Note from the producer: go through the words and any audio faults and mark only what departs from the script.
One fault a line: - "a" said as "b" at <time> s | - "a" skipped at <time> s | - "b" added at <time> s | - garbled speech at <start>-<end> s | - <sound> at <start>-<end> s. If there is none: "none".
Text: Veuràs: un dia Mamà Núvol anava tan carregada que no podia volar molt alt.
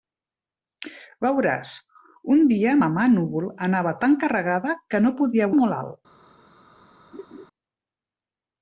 - "volar" skipped at 5.5 s
- laugh at 7.1-7.5 s